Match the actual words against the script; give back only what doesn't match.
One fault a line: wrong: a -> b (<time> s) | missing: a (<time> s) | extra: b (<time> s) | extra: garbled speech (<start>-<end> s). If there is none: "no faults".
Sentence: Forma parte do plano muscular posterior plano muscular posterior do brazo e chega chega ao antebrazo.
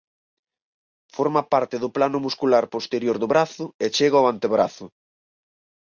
missing: plano muscular posterior (3.2 s)
missing: chega (4.2 s)